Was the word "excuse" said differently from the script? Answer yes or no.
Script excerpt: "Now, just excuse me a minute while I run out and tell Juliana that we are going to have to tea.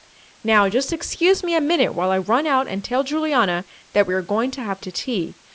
no